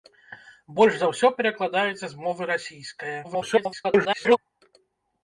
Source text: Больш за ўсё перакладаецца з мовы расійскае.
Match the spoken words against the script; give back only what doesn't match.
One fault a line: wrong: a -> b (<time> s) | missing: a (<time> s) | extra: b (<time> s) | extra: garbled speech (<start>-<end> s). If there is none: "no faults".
extra: garbled speech (3.2-4.4 s)